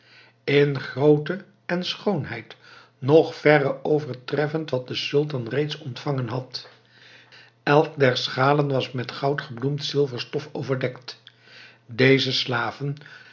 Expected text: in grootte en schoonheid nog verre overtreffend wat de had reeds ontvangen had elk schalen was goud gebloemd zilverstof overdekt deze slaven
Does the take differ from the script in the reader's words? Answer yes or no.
yes